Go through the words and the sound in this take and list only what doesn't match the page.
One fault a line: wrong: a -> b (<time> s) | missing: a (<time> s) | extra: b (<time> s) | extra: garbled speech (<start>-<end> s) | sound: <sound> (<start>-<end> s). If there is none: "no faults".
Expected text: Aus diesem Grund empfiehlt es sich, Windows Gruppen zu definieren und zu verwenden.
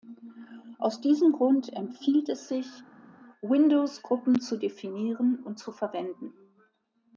no faults